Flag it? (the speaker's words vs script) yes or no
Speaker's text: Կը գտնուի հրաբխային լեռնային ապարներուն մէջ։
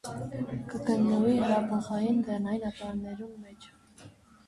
no